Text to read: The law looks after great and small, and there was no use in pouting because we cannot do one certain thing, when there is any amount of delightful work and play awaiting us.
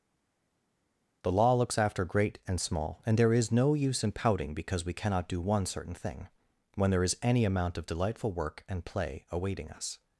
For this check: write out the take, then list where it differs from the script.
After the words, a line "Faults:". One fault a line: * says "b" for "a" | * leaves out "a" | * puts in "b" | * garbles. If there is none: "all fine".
The law looks after great and small, and there is no use in pouting because we cannot do one certain thing, when there is any amount of delightful work and play awaiting us.
Faults:
* says "is" for "was"